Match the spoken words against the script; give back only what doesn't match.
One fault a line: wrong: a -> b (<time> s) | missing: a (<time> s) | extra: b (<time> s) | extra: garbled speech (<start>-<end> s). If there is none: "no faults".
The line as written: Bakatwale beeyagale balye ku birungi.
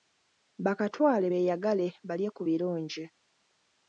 no faults